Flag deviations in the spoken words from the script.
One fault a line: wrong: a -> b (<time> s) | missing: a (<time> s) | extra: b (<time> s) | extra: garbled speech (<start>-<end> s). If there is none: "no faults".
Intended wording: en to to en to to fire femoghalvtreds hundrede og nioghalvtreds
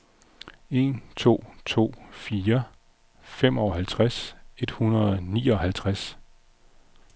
missing: en to to (1.9 s)
extra: et (4.6 s)